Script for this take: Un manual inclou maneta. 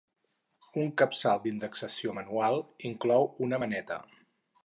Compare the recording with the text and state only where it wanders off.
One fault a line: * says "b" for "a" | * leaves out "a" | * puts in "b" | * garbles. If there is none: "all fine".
* puts in "capçal d'indexació"
* puts in "una"